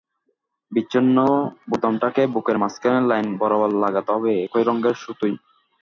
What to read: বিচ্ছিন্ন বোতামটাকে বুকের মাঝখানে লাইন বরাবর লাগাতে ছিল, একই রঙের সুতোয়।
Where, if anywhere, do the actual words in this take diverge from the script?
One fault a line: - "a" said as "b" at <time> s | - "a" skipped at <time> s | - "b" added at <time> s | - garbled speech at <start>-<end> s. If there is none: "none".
- "ছিল" said as "হবে" at 4.1 s